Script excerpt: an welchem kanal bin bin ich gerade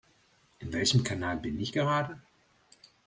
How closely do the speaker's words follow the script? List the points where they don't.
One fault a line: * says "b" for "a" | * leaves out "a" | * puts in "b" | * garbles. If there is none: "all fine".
* says "in" for "an"
* leaves out "bin"